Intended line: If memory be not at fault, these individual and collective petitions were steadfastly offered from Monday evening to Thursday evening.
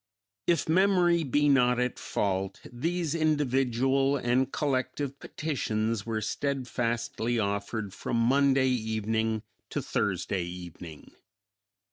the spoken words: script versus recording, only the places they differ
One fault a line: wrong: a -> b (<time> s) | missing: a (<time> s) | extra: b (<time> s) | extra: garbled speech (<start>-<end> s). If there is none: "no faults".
no faults